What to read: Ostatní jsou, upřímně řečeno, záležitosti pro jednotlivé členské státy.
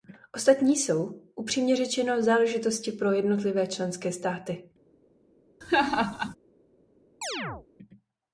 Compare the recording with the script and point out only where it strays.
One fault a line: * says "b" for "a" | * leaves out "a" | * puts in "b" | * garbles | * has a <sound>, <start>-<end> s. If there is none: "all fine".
* has a laugh, 5.6-6.4 s
* has a chirp, 7.2-7.7 s